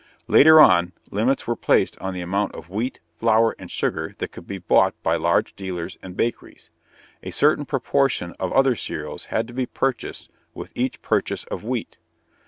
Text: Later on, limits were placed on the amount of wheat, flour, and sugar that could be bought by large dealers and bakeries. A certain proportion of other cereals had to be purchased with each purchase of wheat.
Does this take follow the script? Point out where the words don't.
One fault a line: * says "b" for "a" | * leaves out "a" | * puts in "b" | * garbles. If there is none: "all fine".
all fine